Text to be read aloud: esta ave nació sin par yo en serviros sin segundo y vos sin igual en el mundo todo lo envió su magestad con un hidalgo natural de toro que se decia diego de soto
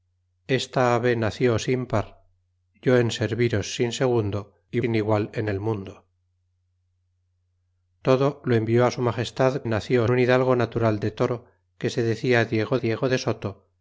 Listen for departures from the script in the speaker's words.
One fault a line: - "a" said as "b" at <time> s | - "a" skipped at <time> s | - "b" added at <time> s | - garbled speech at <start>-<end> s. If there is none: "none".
- "vos" skipped at 4.8 s
- "con" said as "nació" at 9.6 s
- "diego" added at 12.8 s